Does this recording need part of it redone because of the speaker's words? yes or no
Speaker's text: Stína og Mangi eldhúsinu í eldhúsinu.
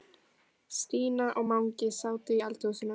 yes